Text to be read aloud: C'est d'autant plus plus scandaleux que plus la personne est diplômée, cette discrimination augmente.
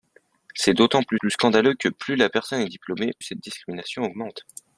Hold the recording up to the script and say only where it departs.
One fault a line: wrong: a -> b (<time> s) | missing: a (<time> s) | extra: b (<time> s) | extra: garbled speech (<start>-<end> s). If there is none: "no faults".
no faults